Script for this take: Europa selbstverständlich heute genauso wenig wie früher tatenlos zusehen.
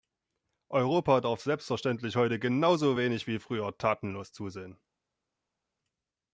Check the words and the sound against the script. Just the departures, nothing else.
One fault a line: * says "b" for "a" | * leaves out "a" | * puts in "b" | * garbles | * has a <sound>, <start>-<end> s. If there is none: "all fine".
* puts in "darf"